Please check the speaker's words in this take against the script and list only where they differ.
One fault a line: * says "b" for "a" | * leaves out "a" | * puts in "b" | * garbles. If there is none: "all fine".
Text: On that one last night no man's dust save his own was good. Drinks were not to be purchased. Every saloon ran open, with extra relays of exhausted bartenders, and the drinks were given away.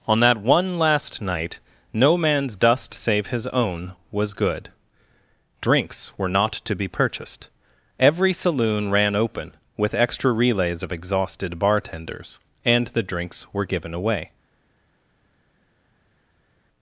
all fine